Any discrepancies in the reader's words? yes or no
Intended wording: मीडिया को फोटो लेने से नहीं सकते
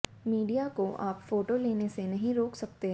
yes